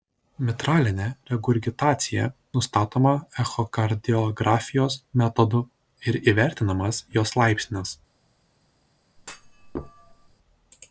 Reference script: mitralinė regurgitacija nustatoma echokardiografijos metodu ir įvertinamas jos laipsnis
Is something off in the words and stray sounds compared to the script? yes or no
yes